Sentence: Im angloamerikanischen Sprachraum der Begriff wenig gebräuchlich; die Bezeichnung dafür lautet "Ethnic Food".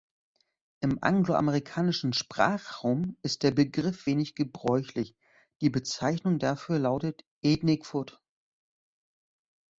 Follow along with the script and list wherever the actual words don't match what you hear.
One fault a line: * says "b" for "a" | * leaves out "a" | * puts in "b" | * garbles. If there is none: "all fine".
* puts in "ist"